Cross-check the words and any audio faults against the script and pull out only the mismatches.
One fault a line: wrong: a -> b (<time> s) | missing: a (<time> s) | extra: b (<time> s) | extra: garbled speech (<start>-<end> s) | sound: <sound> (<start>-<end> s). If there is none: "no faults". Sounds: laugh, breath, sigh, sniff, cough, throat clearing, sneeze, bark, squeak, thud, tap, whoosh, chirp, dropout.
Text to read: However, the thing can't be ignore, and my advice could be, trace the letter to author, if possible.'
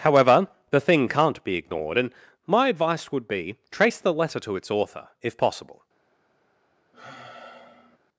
wrong: ignore -> ignored (1.5 s)
wrong: could -> would (3.1 s)
extra: its (4.5 s)
sound: sigh (6.9-8.0 s)